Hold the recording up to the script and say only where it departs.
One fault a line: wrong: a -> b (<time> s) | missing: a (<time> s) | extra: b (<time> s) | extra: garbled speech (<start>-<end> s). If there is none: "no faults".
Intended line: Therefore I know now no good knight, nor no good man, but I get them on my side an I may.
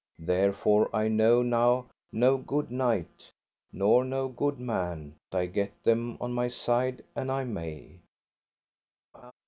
missing: but (5.2 s)